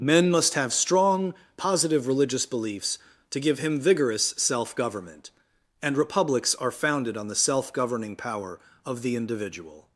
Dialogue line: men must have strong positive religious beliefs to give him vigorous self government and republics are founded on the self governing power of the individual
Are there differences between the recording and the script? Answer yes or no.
no